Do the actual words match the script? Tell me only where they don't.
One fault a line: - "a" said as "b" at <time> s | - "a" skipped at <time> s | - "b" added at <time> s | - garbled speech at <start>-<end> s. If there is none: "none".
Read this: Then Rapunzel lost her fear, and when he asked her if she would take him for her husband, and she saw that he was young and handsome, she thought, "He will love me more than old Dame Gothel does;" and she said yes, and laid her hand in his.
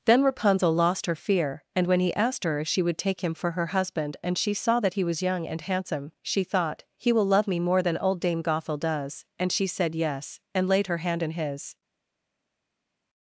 none